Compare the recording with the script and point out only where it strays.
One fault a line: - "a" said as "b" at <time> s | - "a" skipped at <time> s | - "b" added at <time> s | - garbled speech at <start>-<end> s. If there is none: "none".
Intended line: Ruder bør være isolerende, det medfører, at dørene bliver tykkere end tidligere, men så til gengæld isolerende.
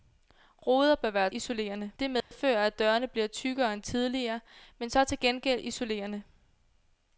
none